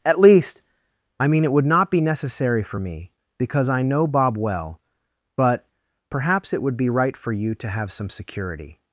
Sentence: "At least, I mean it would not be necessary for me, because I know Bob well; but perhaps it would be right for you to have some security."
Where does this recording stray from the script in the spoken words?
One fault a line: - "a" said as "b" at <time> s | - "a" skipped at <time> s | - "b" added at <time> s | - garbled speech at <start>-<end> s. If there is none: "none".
none